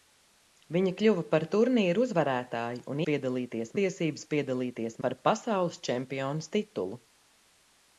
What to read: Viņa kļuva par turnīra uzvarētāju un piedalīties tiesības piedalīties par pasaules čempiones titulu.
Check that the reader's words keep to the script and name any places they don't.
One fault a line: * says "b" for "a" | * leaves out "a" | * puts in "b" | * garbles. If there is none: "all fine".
all fine